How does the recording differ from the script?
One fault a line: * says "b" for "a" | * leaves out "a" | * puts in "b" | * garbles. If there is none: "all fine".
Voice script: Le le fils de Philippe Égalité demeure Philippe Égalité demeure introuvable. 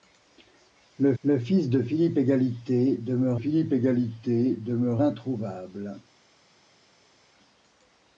all fine